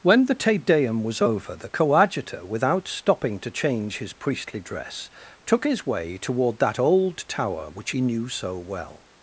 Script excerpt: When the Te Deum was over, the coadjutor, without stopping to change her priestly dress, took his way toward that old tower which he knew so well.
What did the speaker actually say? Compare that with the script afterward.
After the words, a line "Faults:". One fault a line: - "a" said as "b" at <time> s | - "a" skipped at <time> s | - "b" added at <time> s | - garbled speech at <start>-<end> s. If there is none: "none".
When the Te Deum was over, the coadjutor, without stopping to change his priestly dress, took his way toward that old tower which he knew so well.
Faults:
- "her" said as "his" at 4.0 s